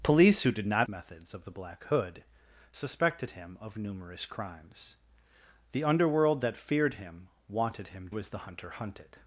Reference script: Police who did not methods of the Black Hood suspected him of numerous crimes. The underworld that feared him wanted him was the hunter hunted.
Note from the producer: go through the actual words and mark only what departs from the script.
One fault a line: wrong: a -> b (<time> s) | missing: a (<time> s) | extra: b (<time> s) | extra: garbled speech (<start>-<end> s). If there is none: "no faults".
no faults